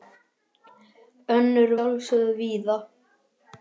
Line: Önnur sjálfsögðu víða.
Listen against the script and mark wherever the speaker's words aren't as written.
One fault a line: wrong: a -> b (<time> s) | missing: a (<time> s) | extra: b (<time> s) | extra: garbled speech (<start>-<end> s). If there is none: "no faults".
no faults